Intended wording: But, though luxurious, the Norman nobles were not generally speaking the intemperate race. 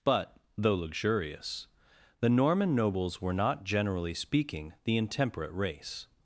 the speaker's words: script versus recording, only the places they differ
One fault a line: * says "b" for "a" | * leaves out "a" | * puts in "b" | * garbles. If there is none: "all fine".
all fine